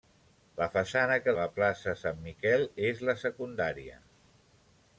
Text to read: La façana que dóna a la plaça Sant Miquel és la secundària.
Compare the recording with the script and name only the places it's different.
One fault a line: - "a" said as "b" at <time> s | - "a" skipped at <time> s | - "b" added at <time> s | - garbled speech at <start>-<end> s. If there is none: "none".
- "dóna" skipped at 1.4 s